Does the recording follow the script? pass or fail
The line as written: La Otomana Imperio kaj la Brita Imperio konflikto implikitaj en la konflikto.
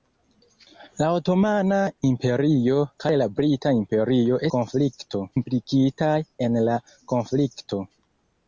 pass